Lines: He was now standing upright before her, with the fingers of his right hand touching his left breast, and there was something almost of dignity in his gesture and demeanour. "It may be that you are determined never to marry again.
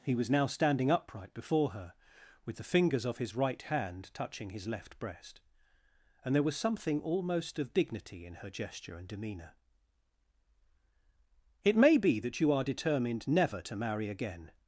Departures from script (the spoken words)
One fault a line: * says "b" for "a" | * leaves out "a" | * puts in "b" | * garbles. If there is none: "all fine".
* says "her" for "his"